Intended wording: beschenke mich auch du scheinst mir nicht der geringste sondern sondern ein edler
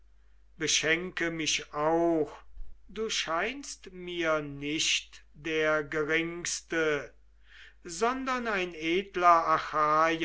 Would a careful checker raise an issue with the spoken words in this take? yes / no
yes